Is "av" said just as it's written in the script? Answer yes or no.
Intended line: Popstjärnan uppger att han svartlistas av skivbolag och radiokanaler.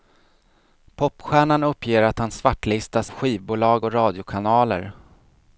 no